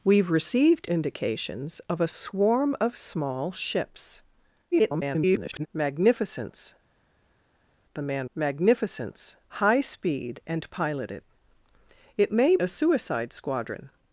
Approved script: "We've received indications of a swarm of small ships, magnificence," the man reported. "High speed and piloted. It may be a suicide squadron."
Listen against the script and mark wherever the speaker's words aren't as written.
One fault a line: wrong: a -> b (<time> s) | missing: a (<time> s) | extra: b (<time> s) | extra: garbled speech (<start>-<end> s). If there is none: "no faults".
extra: garbled speech (4.7-5.7 s)
wrong: reported -> magnificence (8.3 s)
missing: be (12.6 s)